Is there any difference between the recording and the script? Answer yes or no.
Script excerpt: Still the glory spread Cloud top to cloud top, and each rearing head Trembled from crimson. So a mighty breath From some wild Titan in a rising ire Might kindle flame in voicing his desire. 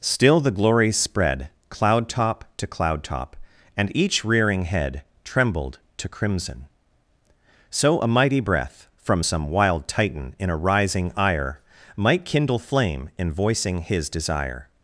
yes